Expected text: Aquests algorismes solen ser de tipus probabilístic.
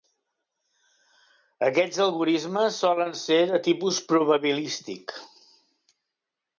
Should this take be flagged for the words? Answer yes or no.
no